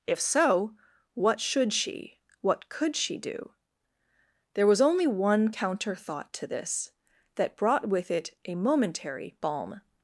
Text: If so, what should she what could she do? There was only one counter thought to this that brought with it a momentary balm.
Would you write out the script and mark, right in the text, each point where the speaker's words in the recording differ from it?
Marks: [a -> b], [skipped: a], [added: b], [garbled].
If so, what should she what could she do? There was only one counter thought to this that brought with it a momentary balm.